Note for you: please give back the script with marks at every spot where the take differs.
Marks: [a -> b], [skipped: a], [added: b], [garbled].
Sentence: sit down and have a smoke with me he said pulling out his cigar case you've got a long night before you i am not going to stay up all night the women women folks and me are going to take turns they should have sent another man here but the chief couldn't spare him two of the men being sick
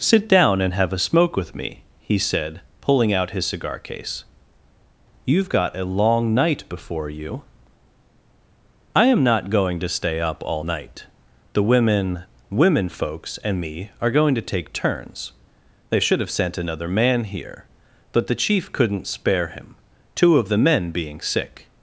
sit down and have a smoke with me he said pulling out his cigar case you've got a long night before you i am not going to stay up all night the women women folks and me are going to take turns they should have sent another man here but the chief couldn't spare him two of the men being sick